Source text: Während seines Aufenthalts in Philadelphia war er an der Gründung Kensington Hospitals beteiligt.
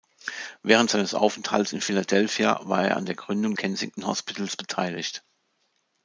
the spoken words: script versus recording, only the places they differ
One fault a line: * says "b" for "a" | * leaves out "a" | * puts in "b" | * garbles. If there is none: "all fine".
all fine